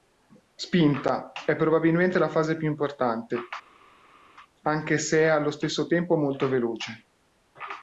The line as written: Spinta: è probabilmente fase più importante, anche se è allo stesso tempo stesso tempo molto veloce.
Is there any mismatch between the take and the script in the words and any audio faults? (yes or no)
yes